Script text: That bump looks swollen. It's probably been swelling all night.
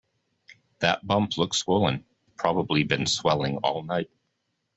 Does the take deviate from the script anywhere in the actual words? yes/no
yes